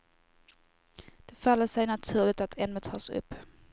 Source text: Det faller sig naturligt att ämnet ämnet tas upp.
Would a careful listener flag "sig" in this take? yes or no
no